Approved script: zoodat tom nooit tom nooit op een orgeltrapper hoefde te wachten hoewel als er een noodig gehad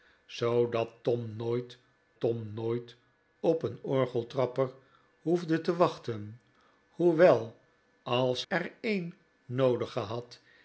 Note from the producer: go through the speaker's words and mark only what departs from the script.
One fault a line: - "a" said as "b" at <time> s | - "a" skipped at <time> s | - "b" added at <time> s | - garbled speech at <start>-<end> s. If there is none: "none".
none